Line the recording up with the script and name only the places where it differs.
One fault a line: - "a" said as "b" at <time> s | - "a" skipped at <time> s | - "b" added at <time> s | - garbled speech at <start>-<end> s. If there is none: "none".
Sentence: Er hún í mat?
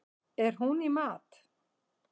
none